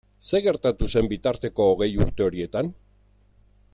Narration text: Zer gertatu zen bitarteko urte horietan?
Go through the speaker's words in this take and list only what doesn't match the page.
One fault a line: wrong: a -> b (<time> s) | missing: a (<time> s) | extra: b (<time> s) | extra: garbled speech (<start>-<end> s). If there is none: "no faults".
extra: hogei (1.7 s)